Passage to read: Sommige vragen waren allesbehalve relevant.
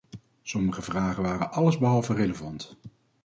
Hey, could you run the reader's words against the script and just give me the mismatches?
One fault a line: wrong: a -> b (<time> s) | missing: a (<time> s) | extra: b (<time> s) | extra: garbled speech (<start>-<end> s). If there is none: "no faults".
no faults